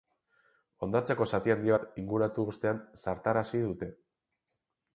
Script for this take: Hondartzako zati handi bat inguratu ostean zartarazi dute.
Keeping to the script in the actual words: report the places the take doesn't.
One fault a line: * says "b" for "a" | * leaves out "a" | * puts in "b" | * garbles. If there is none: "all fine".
all fine